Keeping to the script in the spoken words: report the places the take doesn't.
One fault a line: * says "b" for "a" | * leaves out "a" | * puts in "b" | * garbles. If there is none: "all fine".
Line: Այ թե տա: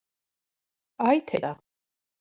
all fine